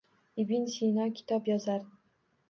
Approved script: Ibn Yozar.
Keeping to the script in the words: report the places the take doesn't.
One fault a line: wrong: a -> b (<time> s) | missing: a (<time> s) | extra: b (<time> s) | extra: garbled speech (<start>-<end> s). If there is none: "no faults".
extra: Sino kitob (0.8 s)